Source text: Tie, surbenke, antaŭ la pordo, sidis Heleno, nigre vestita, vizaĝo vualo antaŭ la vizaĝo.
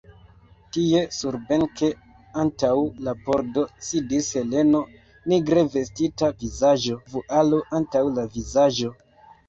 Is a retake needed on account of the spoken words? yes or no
no